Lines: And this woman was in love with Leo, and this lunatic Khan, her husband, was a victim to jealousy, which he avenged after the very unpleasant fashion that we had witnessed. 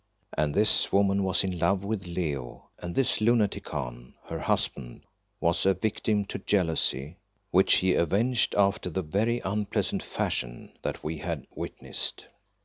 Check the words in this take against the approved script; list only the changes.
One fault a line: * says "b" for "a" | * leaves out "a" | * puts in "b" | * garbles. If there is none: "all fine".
all fine